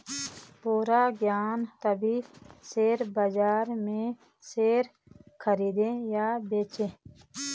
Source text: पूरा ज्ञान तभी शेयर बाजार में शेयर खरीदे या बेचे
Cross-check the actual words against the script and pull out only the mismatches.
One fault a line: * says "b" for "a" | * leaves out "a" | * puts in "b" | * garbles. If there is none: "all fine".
all fine